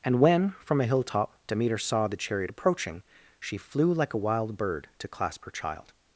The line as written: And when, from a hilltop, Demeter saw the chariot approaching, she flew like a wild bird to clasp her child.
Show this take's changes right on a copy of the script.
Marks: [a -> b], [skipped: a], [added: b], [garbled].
And when, from a hilltop, Demeter saw the chariot approaching, she flew like a wild bird to clasp her child.